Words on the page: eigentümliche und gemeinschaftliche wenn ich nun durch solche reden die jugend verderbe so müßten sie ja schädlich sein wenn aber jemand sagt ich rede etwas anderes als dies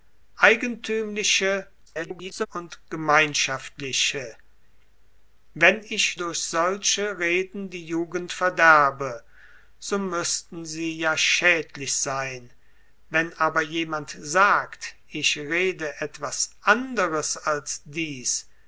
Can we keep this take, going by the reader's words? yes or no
no